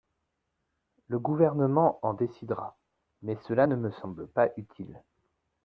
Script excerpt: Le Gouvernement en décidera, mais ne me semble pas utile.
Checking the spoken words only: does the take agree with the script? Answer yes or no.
no